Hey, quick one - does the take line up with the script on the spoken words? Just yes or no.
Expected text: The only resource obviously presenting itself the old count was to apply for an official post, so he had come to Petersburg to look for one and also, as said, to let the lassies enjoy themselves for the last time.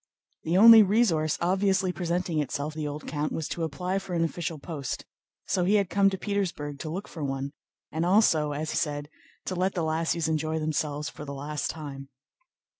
yes